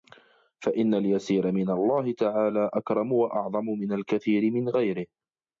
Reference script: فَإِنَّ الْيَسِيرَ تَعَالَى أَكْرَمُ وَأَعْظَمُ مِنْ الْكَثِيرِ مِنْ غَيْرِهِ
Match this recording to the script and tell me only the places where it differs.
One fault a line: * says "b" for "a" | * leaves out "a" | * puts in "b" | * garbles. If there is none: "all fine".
* puts in "مِنْ اللَّهِ"